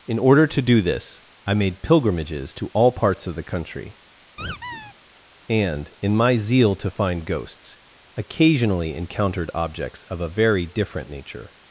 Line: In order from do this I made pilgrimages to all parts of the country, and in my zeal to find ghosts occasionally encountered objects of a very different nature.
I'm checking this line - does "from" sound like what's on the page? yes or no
no